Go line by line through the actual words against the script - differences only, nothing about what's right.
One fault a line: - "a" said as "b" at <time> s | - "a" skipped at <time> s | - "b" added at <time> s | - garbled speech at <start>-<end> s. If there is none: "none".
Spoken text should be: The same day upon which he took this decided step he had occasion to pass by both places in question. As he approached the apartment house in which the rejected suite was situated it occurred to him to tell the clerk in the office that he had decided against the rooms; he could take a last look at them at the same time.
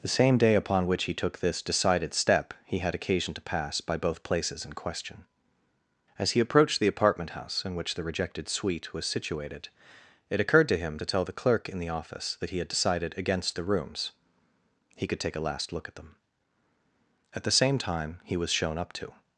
- "He was shown up to" added at 18.2 s